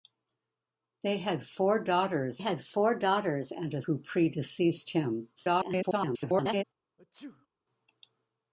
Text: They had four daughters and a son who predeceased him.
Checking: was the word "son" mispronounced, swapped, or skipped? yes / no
yes